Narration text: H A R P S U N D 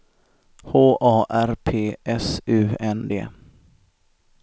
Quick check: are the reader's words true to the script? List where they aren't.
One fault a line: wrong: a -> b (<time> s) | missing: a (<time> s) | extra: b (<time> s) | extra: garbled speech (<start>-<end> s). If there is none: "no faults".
no faults